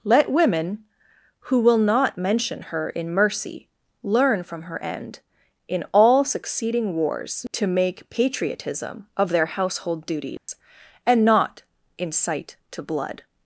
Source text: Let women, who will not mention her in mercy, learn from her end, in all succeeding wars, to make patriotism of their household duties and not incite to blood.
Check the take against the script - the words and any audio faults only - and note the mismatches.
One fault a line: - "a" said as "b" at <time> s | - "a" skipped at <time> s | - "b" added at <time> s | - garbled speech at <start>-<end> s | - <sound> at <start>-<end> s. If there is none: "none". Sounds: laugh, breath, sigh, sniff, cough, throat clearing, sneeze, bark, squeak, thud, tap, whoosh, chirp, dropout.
- dropout at 10.4-10.5 s